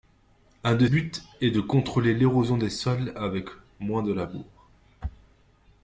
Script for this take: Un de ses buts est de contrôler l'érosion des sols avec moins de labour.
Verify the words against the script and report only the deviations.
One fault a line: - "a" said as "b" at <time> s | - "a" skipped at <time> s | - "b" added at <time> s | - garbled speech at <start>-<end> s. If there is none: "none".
- "ses" skipped at 0.9 s